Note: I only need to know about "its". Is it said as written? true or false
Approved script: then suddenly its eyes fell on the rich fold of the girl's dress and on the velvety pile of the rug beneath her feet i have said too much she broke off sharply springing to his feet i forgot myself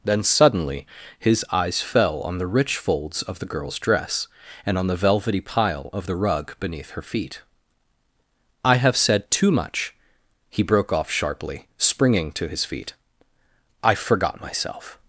false